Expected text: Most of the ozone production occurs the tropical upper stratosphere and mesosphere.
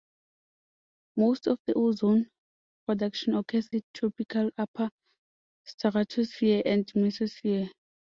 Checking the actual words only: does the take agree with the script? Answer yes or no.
yes